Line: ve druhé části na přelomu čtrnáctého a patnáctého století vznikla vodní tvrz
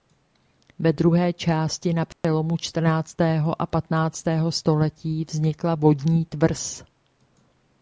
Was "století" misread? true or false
false